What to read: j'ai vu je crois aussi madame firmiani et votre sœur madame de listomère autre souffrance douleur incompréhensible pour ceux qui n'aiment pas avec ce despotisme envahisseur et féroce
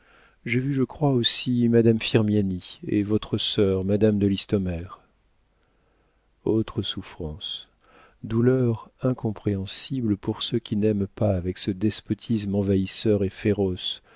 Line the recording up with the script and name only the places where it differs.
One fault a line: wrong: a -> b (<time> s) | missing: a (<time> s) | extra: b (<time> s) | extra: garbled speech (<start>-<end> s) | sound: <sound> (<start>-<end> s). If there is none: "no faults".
no faults